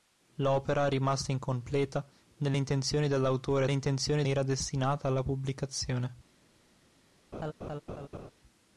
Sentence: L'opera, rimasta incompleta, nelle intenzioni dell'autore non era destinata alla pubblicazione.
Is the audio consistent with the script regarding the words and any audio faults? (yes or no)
no